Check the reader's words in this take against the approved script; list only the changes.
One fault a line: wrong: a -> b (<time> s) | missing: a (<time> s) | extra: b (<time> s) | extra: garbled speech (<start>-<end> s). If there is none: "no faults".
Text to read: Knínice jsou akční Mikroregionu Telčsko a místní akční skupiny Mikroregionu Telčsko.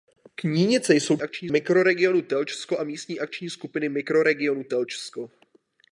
no faults